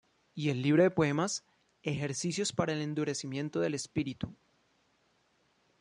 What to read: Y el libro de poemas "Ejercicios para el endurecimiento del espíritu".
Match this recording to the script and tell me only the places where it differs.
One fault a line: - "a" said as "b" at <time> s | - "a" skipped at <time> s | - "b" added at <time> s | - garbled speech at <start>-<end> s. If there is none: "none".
none